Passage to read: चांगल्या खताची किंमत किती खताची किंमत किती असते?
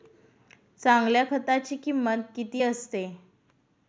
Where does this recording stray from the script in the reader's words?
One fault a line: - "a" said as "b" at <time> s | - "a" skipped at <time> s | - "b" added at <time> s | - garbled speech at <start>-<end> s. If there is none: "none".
- "खताची किंमत किती" skipped at 2.6 s